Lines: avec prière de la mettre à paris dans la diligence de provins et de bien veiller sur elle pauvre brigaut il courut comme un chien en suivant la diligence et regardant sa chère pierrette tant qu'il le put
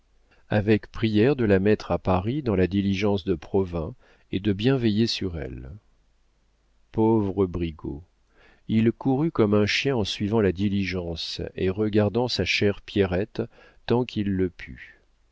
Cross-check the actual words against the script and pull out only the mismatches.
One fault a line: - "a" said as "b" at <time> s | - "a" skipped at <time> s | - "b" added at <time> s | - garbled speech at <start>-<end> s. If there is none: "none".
none